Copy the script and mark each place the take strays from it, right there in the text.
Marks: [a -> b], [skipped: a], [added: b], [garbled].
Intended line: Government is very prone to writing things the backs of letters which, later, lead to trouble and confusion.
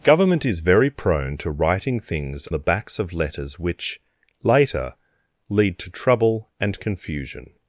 Government is very prone to writing things the backs of letters which, later, lead to trouble and confusion.